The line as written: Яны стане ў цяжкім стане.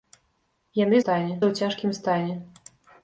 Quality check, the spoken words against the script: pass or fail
pass